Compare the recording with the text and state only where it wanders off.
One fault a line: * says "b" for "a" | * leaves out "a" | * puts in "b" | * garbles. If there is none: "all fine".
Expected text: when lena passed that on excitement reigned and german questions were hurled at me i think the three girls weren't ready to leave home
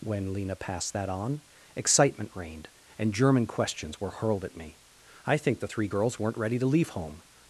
all fine